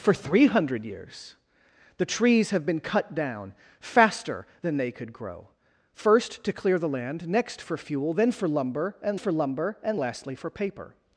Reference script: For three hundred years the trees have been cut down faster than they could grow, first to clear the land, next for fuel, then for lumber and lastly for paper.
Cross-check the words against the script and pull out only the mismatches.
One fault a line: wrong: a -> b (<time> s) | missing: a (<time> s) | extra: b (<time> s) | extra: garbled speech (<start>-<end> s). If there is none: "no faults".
extra: for lumber and (9.1 s)